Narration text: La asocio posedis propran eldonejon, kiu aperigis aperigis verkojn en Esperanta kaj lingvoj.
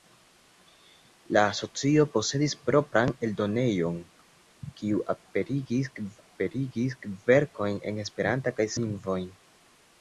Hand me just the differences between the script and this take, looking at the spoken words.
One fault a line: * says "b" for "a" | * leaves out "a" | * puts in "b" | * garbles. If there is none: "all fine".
all fine